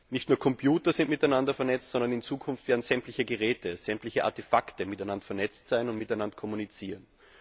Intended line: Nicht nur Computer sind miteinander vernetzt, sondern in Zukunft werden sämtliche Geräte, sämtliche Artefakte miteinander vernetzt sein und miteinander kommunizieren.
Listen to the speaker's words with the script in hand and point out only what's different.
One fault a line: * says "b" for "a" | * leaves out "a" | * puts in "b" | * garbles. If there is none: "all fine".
all fine